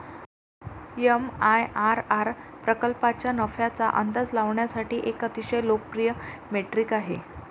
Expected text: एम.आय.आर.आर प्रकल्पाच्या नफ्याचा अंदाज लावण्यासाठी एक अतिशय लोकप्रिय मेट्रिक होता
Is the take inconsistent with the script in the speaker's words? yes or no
yes